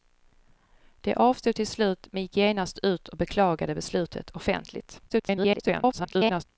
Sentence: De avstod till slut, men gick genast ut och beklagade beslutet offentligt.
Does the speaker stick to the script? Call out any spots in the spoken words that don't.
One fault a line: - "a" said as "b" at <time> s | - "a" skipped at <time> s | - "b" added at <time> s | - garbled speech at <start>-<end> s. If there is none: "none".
- garbled speech at 5.1-6.4 s